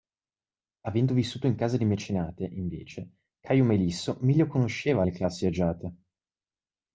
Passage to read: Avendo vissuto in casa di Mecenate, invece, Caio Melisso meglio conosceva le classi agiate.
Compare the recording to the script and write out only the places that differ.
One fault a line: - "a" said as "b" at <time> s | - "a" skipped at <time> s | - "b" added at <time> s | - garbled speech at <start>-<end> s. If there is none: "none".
none